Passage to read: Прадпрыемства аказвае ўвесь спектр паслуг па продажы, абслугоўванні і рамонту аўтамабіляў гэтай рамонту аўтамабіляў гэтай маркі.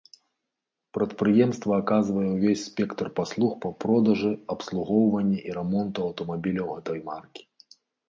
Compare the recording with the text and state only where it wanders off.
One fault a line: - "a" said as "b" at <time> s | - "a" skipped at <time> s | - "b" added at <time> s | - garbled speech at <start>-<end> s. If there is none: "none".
- "рамонту аўтамабіляў гэтай" skipped at 7.0 s